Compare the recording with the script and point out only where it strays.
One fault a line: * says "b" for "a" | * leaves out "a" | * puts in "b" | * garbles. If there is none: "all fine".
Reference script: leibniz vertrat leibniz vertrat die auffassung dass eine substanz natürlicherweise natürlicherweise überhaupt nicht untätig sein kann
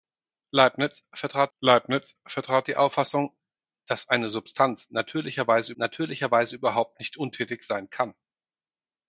all fine